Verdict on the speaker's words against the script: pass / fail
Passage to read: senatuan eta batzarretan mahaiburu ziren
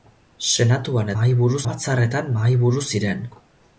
fail